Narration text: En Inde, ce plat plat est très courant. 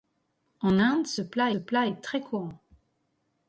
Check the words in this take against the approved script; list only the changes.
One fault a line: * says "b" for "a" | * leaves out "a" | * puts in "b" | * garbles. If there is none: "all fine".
all fine